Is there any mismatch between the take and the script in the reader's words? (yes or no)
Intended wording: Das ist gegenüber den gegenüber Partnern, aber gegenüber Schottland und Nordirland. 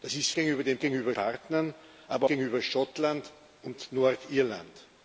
no